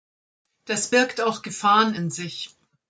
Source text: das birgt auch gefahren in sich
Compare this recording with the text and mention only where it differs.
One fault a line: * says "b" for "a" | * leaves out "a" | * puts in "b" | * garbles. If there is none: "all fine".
all fine